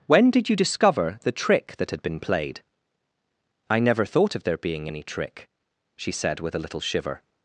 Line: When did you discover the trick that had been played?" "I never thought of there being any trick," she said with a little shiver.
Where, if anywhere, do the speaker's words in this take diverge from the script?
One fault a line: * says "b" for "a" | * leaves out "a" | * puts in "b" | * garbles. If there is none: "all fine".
all fine